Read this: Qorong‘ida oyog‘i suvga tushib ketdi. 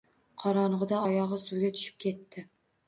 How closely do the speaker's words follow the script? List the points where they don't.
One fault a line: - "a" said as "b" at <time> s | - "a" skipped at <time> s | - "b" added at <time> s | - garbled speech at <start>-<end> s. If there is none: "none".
none